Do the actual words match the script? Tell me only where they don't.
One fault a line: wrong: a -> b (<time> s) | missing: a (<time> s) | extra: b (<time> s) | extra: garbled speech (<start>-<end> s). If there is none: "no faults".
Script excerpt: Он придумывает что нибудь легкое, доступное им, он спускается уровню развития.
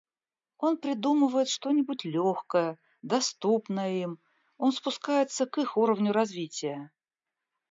extra: к их (5.4 s)